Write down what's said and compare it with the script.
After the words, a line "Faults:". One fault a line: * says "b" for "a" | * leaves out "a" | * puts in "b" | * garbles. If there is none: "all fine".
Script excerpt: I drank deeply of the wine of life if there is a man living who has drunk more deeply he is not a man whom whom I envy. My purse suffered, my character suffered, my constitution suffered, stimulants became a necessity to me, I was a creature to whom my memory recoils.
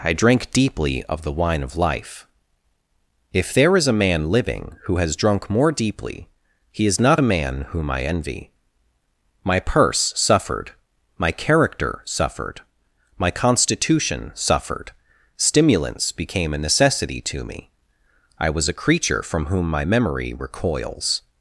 I drank deeply of the wine of life if there is a man living who has drunk more deeply he is not a man whom I envy. My purse suffered, my character suffered, my constitution suffered, stimulants became a necessity to me, I was a creature from whom my memory recoils.
Faults:
* leaves out "whom"
* says "from" for "to"